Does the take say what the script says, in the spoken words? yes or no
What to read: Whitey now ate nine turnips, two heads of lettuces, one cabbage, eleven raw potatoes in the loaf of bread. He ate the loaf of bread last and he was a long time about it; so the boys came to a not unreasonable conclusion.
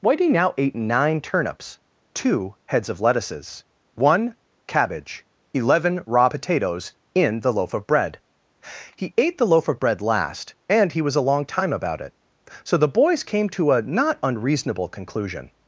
yes